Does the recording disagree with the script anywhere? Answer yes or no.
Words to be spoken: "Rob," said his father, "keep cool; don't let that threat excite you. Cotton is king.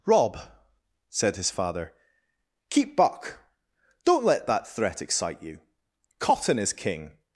yes